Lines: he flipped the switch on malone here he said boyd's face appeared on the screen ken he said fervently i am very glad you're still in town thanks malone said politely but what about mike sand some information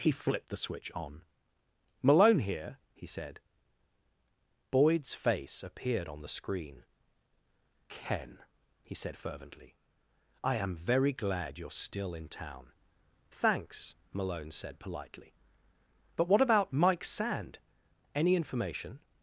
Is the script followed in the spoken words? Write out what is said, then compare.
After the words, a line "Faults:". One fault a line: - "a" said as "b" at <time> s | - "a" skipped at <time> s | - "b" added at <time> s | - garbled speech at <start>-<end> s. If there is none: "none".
he flipped the switch on malone here he said boyd's face appeared on the screen ken he said fervently i am very glad you're still in town thanks malone said politely but what about mike sand any information
Faults:
- "some" said as "any" at 18.1 s